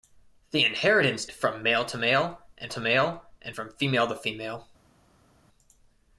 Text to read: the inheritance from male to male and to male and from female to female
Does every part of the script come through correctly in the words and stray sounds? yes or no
yes